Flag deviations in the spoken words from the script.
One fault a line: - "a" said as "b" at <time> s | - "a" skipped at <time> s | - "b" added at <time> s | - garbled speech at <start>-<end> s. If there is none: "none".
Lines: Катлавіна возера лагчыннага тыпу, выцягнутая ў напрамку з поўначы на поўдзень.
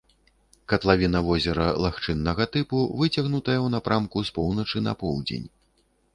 none